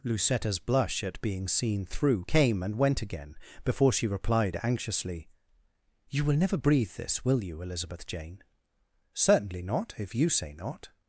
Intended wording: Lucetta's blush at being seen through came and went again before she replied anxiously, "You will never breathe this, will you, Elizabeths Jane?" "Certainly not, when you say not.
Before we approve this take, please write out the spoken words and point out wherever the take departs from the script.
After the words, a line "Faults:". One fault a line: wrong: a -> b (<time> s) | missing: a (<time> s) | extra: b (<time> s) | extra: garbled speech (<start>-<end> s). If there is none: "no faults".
Lucetta's blush at being seen through came and went again before she replied anxiously, "You will never breathe this, will you, Elizabeth Jane?" "Certainly not, if you say not.
Faults:
wrong: Elizabeths -> Elizabeth (7.6 s)
wrong: when -> if (10.0 s)